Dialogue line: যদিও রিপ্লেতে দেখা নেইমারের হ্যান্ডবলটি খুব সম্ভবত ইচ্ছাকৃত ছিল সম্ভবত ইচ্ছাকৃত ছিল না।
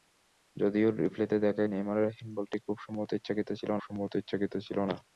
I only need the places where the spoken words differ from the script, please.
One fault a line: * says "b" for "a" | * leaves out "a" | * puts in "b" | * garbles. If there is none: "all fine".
all fine